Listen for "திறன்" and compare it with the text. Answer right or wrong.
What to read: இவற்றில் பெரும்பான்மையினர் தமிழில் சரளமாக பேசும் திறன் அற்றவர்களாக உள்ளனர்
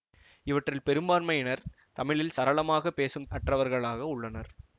wrong